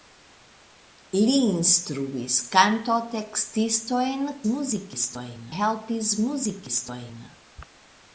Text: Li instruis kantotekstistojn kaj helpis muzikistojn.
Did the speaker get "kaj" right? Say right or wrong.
wrong